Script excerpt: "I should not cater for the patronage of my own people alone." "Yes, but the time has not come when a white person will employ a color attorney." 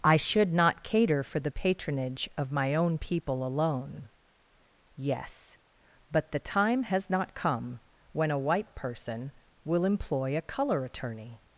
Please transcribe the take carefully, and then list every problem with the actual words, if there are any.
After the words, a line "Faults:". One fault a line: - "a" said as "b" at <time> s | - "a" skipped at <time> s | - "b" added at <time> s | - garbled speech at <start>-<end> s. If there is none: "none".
"I should not cater for the patronage of my own people alone." "Yes, but the time has not come when a white person will employ a color attorney."
Faults:
none